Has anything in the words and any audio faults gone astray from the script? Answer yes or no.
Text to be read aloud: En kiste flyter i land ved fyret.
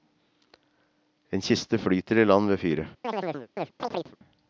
yes